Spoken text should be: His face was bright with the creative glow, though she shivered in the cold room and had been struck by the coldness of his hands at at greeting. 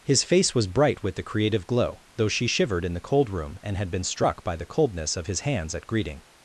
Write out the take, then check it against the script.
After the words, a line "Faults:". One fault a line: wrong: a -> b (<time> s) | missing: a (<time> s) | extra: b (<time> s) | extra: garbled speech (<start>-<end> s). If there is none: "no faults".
His face was bright with the creative glow, though she shivered in the cold room and had been struck by the coldness of his hands at greeting.
Faults:
missing: at (5.9 s)